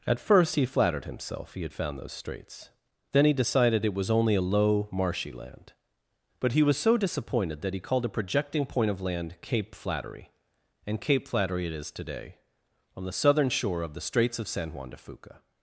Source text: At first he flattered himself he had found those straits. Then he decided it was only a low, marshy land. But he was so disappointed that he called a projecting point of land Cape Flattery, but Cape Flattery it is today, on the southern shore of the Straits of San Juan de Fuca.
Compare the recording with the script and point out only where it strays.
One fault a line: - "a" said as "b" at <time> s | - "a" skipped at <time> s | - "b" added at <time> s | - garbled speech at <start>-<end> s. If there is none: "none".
- "but" said as "and" at 10.9 s